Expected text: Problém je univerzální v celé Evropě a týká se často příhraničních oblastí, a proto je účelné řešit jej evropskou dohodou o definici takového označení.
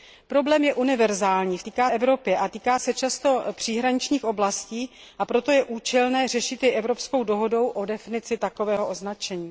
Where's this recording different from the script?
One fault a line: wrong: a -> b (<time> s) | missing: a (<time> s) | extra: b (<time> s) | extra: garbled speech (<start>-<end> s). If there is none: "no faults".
wrong: celé -> týká (1.6 s)